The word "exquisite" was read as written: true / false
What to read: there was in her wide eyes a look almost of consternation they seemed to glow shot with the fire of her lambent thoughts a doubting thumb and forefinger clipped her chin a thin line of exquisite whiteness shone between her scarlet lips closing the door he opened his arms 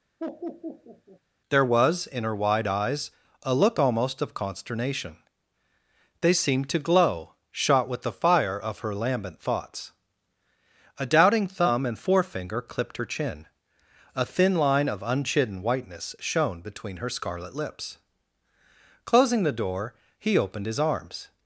false